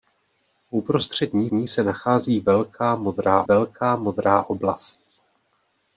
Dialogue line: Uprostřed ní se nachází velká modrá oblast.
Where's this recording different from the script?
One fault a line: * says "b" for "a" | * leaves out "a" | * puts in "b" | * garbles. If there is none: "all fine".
* puts in "ní"
* puts in "velká modrá"